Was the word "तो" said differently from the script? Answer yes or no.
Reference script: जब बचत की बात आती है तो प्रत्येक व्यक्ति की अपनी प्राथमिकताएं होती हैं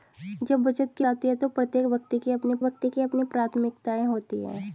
no